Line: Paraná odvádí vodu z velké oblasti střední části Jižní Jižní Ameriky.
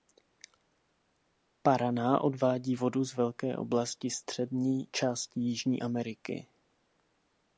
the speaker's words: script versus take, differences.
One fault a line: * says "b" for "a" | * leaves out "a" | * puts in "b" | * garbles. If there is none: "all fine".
* leaves out "Jižní"